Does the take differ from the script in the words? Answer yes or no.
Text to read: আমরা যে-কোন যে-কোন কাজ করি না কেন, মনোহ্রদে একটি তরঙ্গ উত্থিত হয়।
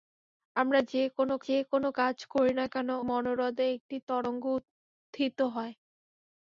no